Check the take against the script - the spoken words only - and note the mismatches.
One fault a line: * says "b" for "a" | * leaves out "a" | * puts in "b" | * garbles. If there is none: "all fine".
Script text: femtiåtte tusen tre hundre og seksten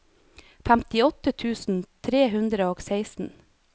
all fine